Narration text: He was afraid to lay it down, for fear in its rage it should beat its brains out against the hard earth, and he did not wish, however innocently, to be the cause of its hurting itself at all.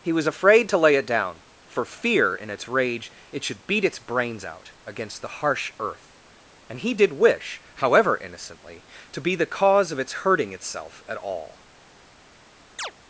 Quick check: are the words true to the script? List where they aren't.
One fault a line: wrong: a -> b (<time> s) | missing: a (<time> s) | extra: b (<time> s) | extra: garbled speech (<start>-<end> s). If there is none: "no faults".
wrong: hard -> harsh (5.3 s)
missing: not (7.1 s)